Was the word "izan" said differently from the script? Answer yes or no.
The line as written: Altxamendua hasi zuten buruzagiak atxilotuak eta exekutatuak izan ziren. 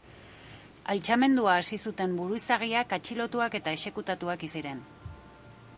yes